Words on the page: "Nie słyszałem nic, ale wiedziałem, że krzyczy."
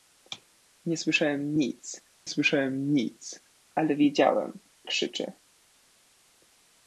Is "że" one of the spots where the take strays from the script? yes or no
yes